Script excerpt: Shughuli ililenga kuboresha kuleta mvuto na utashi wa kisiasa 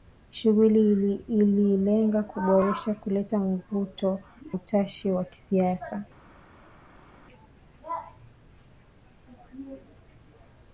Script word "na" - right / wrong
wrong